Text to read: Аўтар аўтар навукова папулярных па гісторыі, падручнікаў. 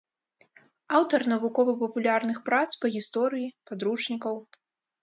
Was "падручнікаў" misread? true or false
false